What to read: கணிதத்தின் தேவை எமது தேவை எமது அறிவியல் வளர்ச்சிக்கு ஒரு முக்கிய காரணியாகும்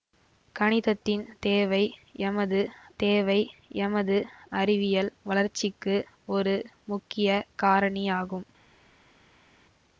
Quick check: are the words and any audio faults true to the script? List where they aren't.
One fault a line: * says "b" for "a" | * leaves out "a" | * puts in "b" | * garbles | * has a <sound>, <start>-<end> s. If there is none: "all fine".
all fine